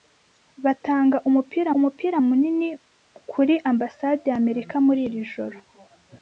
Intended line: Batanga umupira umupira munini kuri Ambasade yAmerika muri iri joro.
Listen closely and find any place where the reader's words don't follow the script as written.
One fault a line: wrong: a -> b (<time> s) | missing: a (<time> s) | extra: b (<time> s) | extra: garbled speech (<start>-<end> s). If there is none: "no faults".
no faults